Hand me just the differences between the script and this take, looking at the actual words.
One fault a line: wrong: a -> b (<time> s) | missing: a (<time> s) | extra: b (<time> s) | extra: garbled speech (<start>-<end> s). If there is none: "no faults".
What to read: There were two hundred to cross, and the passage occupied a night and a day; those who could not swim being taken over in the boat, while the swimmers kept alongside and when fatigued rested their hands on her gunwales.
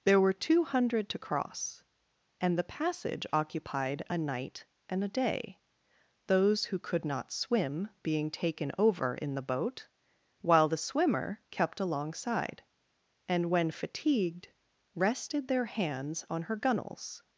wrong: swimmers -> swimmer (10.8 s)